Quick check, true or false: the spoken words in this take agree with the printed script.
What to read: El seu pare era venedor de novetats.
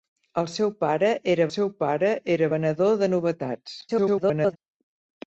false